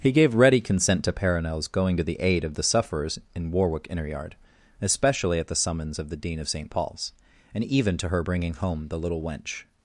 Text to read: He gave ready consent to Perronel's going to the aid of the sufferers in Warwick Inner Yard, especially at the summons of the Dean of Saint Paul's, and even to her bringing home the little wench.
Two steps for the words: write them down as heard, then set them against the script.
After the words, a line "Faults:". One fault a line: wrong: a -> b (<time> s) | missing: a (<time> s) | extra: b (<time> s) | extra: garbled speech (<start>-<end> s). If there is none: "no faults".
He gave ready consent to Perronel's going to the aid of the sufferers in Warwick Inner Yard, especially at the summons of the Dean of Saint Paul's, and even to her bringing home the little wench.
Faults:
no faults